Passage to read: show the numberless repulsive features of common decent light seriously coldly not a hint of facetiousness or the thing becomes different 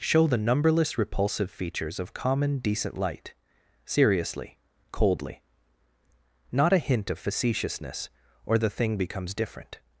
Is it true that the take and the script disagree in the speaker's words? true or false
false